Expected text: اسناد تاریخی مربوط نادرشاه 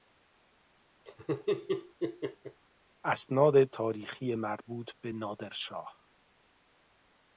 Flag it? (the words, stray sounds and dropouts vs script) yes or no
yes